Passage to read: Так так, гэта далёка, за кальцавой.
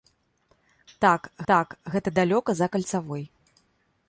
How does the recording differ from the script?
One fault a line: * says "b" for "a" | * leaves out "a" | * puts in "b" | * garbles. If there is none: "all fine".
all fine